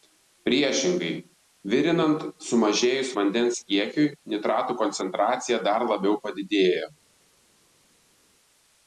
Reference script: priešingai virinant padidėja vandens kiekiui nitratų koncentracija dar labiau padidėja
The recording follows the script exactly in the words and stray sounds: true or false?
false